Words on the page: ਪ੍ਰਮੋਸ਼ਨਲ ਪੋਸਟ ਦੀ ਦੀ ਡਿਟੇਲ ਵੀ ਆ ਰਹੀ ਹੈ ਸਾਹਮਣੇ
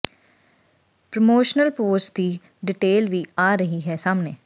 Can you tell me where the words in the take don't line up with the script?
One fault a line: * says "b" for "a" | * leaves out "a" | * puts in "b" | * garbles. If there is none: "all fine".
* leaves out "ਦੀ"